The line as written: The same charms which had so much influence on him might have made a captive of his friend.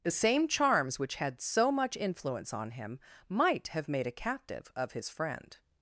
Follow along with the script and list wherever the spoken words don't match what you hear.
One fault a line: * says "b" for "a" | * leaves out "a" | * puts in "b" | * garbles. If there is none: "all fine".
all fine